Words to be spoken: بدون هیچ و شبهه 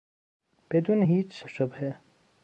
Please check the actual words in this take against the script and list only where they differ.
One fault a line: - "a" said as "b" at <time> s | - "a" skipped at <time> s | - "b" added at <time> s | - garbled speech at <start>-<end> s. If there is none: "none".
none